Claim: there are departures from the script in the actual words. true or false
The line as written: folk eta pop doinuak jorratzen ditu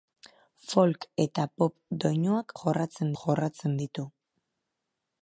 true